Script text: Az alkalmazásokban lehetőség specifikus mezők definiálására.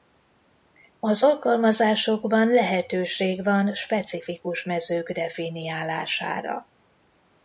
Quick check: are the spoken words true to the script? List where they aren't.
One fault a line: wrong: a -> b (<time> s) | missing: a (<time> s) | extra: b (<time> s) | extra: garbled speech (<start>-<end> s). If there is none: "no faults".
extra: van (3.4 s)